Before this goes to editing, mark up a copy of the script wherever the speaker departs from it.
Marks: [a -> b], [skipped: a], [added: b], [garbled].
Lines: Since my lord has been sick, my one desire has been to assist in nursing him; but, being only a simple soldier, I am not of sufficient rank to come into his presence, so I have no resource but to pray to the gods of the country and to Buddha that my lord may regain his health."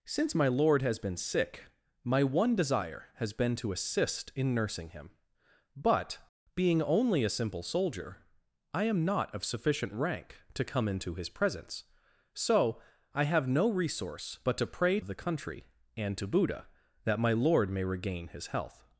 Since my lord has been sick, my one desire has been to assist in nursing him; but, being only a simple soldier, I am not of sufficient rank to come into his presence, so I have no resource but to pray [skipped: to the gods] of the country and to Buddha that my lord may regain his health."